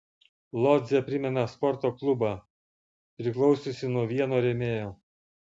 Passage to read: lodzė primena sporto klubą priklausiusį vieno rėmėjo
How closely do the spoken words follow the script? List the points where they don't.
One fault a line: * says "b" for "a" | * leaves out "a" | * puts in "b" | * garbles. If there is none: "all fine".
* puts in "nuo"